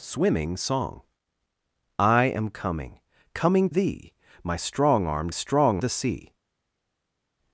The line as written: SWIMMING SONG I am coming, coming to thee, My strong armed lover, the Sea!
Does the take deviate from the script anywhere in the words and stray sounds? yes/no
yes